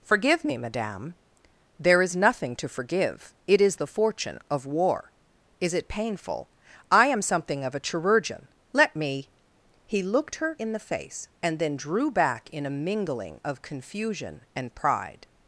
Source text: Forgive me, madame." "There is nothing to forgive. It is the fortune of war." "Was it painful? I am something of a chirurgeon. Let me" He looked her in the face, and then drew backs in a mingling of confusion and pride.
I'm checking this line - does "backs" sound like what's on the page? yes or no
no